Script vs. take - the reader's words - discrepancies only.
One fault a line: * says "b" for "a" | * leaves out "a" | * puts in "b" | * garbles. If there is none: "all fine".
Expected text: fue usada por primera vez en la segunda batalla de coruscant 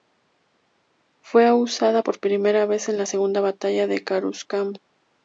all fine